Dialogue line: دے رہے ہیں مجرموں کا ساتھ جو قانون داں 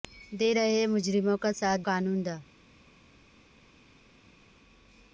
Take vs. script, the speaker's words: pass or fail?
fail